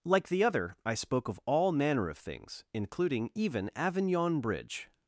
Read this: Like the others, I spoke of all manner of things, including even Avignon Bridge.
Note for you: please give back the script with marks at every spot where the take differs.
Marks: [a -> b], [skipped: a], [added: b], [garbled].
Like the [others, -> other] I spoke of all manner of things, including even Avignon Bridge.